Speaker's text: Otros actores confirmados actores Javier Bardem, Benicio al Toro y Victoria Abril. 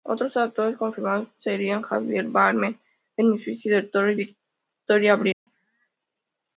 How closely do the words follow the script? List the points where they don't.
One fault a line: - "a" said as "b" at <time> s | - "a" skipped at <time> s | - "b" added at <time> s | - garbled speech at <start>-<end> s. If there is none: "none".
- "actores" said as "serían" at 1.4 s
- "al" said as "del" at 3.8 s